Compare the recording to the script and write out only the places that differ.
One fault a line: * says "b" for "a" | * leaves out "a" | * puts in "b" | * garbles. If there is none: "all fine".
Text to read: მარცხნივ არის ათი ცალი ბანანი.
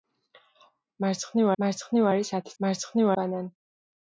* puts in "მარცხნივ"
* says "მარცხნივ" for "ცალი"